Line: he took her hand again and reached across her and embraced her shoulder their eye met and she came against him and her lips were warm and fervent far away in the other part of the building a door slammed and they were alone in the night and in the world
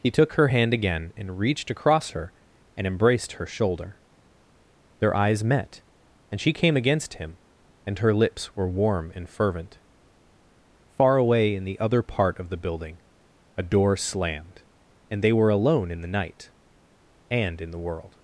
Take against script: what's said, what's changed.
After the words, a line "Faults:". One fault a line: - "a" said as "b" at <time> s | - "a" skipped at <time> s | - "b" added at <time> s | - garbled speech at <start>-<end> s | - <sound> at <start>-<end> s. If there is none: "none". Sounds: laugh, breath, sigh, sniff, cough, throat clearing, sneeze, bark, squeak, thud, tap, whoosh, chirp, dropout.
he took her hand again and reached across her and embraced her shoulder their eyes met and she came against him and her lips were warm and fervent far away in the other part of the building a door slammed and they were alone in the night and in the world
Faults:
- "eye" said as "eyes" at 5.1 s